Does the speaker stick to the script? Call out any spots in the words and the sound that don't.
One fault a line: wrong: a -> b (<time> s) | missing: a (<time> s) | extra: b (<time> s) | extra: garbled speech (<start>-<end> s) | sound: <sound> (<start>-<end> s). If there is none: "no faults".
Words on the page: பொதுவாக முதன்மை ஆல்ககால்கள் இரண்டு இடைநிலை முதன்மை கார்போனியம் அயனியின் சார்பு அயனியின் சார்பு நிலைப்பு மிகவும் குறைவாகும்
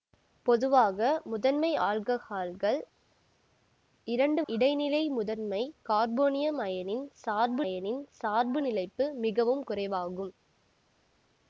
no faults